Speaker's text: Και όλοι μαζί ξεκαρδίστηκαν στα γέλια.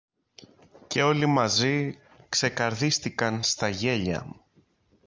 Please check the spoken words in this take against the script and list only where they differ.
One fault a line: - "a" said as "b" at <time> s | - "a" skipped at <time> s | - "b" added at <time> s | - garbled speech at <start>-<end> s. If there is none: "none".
none